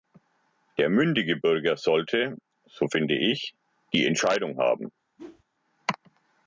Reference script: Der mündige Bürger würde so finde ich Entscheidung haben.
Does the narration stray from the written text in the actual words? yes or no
yes